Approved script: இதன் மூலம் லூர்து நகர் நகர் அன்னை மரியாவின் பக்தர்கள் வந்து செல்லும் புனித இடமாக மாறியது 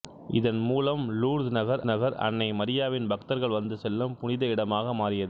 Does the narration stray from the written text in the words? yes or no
no